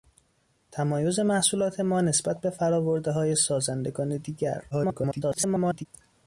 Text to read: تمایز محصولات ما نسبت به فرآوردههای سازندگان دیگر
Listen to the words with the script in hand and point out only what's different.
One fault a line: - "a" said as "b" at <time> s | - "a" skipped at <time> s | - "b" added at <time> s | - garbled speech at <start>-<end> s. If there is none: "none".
- garbled speech at 4.7-5.9 s